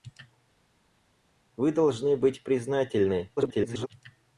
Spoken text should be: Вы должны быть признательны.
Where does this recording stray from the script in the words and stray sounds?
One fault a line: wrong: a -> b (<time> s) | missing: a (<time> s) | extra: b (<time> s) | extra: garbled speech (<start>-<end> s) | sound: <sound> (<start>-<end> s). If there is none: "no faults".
extra: garbled speech (3.4-3.9 s)